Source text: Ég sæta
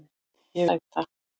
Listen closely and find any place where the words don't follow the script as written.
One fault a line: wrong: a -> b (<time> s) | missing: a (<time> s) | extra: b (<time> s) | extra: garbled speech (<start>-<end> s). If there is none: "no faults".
no faults